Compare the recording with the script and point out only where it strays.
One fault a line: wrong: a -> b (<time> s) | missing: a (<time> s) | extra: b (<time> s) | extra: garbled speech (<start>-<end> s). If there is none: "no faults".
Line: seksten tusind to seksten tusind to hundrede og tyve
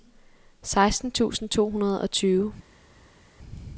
missing: seksten tusind to (1.7 s)